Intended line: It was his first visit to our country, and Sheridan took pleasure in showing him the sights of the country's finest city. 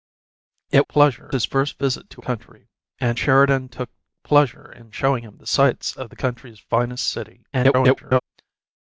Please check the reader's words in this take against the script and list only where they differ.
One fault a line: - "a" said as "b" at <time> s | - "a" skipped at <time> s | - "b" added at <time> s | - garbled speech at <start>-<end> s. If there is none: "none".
- "was" said as "pleasure" at 0.9 s
- "our" skipped at 2.2 s
- garbled speech at 7.5-8.2 s